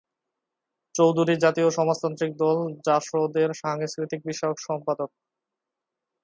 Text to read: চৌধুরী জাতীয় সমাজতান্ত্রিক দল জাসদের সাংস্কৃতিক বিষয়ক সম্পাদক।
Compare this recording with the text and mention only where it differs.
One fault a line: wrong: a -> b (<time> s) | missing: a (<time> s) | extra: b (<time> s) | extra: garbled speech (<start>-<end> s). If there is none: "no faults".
no faults